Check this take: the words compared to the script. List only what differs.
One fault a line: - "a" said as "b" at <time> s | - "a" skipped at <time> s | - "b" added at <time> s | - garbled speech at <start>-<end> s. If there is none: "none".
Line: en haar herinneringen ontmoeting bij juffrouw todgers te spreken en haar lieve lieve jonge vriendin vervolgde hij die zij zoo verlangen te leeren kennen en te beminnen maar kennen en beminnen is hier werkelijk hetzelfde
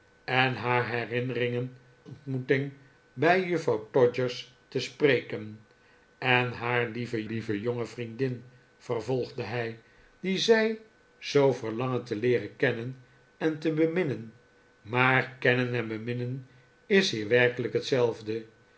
none